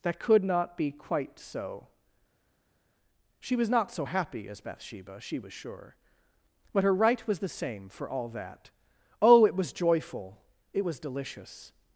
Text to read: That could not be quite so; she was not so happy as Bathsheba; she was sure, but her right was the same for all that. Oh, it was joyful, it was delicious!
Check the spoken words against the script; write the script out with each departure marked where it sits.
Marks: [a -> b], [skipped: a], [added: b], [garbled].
That could not be quite so; she was not so happy as Bathsheba; she was sure, but her right was the same for all that. Oh, it was joyful, it was delicious!